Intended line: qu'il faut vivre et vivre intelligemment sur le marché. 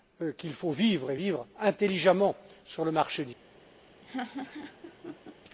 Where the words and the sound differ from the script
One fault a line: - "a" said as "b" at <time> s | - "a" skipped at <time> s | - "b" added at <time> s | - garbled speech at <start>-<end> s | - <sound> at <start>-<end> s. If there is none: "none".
- laugh at 4.0-5.3 s